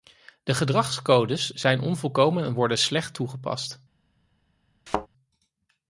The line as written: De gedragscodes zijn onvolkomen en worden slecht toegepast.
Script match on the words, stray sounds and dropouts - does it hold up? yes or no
no